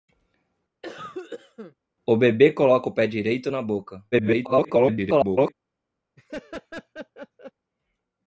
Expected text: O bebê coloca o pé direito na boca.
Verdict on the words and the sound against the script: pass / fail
fail